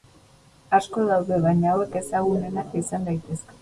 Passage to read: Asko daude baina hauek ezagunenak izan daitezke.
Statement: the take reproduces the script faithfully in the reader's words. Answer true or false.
true